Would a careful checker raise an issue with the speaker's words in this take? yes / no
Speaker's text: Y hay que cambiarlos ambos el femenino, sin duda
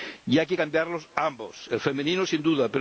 no